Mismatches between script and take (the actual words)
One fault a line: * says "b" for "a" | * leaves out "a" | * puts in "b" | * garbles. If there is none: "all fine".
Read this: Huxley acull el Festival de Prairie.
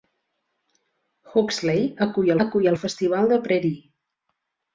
* puts in "acull"